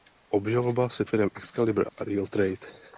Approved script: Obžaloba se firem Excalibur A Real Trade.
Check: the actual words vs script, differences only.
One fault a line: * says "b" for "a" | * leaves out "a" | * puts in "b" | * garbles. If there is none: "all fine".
all fine